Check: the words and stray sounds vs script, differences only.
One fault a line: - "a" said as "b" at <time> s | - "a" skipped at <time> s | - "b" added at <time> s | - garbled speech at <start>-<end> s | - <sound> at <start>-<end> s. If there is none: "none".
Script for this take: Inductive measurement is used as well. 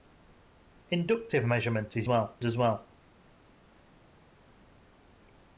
- "used" said as "well" at 2.1 s